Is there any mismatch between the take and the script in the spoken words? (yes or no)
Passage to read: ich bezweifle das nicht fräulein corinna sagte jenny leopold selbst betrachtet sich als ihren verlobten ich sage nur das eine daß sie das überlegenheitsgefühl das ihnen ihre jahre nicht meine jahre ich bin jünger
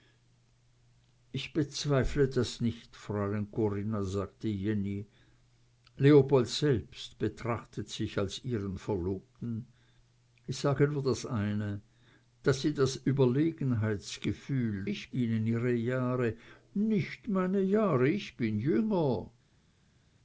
yes